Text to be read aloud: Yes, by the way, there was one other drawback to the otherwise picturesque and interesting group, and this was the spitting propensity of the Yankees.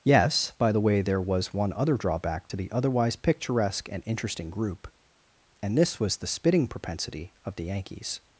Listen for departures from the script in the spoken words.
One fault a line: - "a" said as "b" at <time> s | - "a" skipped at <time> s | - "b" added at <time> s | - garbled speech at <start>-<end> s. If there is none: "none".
none